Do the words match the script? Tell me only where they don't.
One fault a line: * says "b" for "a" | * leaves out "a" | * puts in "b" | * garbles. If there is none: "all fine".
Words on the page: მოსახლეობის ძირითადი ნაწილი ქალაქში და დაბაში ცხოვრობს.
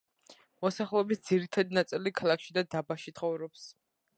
all fine